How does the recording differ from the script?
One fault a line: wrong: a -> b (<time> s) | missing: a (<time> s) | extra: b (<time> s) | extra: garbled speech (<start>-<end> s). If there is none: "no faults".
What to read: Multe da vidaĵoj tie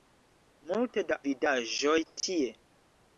no faults